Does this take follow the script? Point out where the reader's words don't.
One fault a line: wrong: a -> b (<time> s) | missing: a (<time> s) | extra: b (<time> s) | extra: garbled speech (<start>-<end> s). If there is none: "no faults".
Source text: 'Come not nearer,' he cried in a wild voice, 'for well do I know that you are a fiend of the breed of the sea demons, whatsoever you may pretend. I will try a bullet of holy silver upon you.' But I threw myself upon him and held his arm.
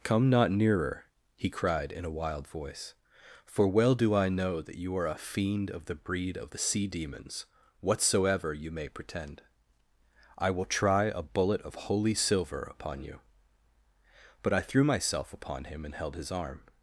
no faults